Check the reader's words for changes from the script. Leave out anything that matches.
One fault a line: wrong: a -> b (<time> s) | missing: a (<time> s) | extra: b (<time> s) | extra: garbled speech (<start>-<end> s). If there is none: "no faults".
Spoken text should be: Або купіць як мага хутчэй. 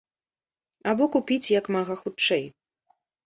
no faults